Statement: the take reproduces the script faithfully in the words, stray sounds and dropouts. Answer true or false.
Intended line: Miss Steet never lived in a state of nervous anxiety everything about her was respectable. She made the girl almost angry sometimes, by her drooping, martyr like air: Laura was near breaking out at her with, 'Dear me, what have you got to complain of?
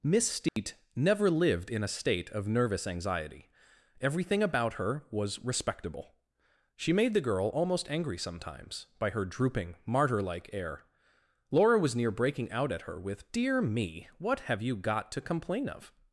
false